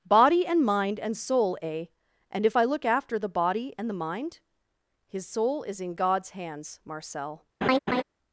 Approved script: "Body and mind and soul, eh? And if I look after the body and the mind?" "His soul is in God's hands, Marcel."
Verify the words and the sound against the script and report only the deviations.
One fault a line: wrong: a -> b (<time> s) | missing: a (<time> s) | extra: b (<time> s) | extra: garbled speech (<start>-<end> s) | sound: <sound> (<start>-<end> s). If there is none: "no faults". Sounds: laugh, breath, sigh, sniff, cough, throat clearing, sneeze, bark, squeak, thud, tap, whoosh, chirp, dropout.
sound: laugh (7.6-8.0 s)